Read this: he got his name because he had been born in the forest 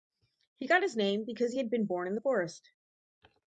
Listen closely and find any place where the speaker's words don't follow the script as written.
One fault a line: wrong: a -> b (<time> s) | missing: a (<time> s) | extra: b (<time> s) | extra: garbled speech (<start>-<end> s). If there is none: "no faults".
no faults